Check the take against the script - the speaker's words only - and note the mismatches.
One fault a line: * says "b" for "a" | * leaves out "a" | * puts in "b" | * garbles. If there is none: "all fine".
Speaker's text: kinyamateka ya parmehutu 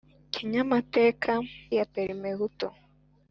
all fine